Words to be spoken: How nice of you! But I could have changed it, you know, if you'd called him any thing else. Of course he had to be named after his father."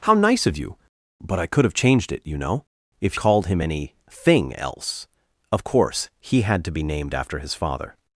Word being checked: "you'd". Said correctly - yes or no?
no